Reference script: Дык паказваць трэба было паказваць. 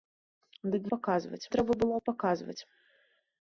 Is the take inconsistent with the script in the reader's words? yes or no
no